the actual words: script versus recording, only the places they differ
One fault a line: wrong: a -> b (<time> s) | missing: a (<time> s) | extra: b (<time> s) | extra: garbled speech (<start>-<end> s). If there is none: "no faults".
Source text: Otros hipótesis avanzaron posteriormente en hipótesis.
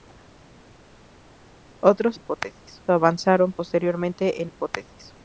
no faults